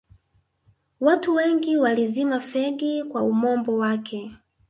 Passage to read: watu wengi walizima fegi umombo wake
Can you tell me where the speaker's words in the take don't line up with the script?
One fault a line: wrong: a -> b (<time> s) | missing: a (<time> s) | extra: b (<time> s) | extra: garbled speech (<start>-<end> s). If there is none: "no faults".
extra: kwa (3.0 s)